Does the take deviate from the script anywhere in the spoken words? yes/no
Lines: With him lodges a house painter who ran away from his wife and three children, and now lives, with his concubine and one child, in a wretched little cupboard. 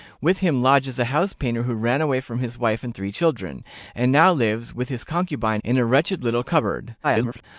yes